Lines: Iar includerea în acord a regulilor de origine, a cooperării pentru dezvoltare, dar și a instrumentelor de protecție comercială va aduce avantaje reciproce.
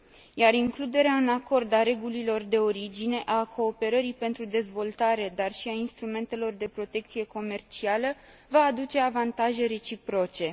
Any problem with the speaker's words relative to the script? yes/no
no